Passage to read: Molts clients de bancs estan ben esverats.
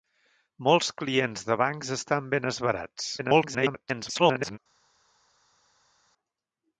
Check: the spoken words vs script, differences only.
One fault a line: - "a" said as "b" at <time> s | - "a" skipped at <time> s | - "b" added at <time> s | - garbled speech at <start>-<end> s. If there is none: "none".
- garbled speech at 3.2-4.6 s